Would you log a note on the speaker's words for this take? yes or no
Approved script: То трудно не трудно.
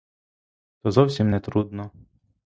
yes